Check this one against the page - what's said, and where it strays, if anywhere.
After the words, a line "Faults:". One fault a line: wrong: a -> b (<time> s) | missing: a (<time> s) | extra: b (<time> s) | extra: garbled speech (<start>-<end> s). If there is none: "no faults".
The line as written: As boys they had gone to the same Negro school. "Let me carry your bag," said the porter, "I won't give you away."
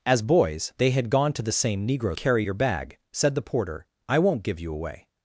As boys they had gone to the same Negro carry your bag," said the porter, "I won't give you away."
Faults:
missing: school Let me (2.2 s)